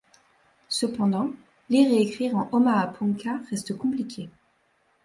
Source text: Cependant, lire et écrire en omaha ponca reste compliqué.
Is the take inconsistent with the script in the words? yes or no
no